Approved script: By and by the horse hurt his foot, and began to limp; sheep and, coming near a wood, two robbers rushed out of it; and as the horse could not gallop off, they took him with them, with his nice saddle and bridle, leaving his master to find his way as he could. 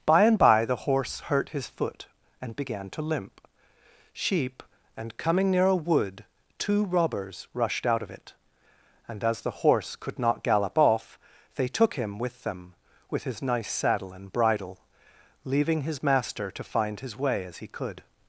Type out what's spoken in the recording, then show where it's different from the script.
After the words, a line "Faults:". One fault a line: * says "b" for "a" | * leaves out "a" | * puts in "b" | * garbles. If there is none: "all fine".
By and by the horse hurt his foot, and began to limp; sheep and, coming near a wood, two robbers rushed out of it; and as the horse could not gallop off, they took him with them, with his nice saddle and bridle, leaving his master to find his way as he could.
Faults:
all fine